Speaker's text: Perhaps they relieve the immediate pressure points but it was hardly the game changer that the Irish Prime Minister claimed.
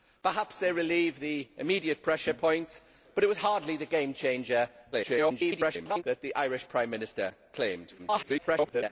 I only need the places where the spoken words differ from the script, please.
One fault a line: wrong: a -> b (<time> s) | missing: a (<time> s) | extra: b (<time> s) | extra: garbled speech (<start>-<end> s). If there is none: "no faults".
extra: garbled speech (4.9-6.0 s)
extra: garbled speech (8.0-8.9 s)